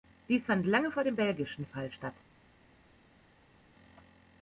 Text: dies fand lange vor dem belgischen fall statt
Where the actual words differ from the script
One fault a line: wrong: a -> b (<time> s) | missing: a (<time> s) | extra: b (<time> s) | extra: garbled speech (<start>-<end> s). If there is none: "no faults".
no faults